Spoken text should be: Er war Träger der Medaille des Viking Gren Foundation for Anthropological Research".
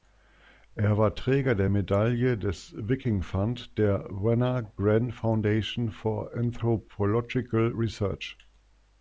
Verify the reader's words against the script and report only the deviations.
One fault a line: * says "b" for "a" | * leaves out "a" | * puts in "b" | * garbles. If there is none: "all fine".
* puts in "Fund der Wenner"